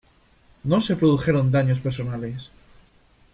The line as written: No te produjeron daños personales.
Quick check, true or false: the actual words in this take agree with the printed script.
false